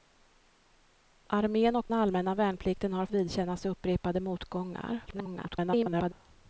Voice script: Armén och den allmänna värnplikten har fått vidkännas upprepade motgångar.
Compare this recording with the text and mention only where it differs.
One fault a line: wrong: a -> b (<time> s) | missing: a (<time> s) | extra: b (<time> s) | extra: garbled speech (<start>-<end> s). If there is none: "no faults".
missing: den (1.9 s)
missing: fått (3.1 s)
extra: garbled speech (5.1-6.1 s)